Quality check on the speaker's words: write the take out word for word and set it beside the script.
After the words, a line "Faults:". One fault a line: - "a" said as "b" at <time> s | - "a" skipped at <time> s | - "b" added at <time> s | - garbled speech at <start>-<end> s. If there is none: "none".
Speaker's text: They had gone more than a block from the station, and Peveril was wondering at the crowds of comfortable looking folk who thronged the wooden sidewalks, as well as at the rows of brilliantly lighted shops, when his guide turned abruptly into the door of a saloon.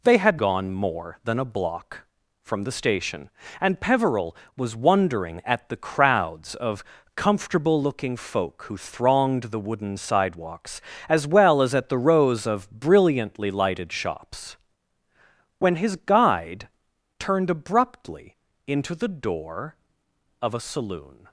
They had gone more than a block from the station, and Peveril was wondering at the crowds of comfortable looking folk who thronged the wooden sidewalks, as well as at the rows of brilliantly lighted shops, when his guide turned abruptly into the door of a saloon.
Faults:
none